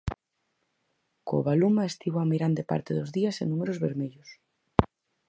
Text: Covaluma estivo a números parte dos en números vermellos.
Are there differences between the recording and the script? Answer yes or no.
yes